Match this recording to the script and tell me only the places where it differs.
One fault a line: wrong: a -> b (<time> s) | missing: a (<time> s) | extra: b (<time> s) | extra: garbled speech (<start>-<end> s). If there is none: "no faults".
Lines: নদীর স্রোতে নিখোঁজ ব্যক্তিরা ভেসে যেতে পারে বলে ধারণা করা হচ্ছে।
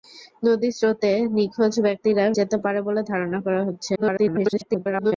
missing: ভেসে (2.2 s)
extra: garbled speech (3.9-5.1 s)